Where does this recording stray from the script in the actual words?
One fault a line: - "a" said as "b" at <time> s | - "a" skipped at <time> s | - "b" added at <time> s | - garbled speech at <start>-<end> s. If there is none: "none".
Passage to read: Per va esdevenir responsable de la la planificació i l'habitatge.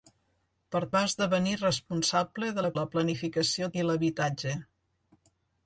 none